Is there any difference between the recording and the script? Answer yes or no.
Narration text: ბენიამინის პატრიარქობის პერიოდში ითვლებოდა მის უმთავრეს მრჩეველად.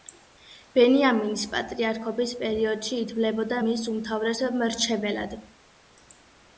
no